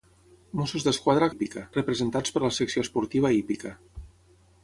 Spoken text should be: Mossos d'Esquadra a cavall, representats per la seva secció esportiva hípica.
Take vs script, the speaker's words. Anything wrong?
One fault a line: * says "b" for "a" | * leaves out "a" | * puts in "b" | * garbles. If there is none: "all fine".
* says "hípica" for "cavall"
* leaves out "seva"